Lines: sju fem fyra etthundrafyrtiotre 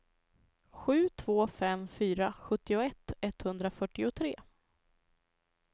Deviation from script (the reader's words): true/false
true